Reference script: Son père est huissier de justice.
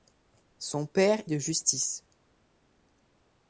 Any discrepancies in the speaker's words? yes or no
yes